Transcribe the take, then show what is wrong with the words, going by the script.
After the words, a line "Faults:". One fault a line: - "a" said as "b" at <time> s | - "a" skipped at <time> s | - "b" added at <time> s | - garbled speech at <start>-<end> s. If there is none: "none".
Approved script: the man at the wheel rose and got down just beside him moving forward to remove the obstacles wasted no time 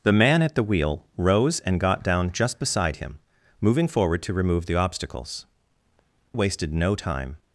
the man at the wheel rose and got down just beside him moving forward to remove the obstacles wasted no time
Faults:
none